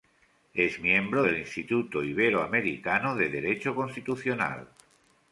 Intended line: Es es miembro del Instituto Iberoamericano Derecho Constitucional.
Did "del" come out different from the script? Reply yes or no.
no